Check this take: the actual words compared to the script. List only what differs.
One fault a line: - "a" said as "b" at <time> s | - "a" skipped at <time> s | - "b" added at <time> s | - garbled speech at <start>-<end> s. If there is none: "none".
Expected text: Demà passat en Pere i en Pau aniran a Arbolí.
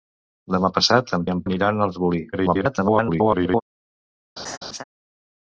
- "Pere" skipped at 1.3 s
- "Pau" skipped at 1.4 s
- garbled speech at 2.3-3.6 s